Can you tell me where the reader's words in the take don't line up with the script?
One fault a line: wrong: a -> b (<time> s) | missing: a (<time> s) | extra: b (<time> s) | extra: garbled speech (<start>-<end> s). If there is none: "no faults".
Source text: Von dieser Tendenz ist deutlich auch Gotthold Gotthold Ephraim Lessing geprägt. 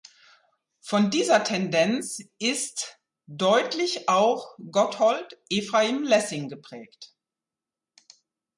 missing: Gotthold (5.4 s)